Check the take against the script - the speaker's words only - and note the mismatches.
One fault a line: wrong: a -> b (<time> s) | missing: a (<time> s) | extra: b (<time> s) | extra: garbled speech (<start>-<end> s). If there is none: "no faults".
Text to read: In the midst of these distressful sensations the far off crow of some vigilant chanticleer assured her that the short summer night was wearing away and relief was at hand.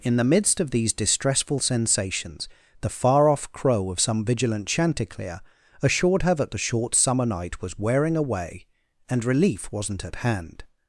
wrong: was -> wasn't (9.7 s)